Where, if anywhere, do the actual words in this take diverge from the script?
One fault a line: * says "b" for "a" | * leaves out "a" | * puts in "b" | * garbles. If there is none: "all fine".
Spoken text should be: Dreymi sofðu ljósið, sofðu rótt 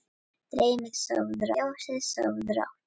all fine